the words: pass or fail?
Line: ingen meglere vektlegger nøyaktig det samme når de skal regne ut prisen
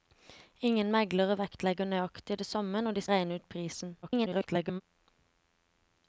fail